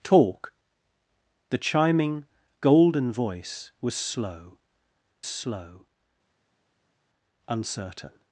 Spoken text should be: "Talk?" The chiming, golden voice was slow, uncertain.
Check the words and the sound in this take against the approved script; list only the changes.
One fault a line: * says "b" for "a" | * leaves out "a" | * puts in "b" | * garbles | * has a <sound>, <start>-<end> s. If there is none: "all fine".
* puts in "slow"